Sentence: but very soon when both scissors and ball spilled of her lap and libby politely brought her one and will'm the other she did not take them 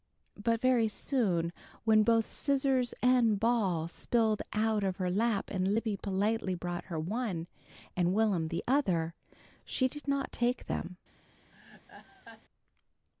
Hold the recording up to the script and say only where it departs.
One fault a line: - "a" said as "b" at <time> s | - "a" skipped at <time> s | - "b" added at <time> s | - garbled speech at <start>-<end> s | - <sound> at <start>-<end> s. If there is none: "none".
- "out" added at 4.5 s
- laugh at 11.5-12.4 s